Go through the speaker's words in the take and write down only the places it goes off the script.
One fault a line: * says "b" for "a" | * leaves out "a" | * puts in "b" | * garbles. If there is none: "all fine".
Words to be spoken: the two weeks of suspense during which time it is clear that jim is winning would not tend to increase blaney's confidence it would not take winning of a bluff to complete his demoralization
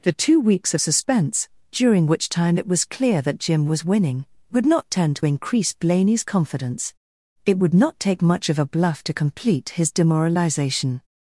* says "was" for "is"
* says "was" for "is"
* says "much" for "winning"